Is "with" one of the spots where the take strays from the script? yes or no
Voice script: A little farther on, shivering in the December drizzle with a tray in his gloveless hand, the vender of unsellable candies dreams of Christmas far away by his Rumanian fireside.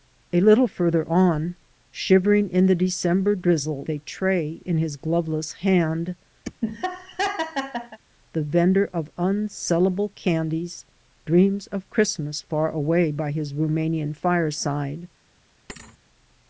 yes